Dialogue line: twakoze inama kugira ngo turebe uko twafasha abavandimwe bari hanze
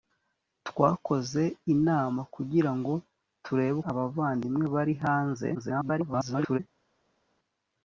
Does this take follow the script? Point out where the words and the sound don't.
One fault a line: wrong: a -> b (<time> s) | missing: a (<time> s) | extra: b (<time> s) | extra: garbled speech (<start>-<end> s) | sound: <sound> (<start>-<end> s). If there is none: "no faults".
missing: uko twafasha (3.8 s)
extra: garbled speech (5.5-6.6 s)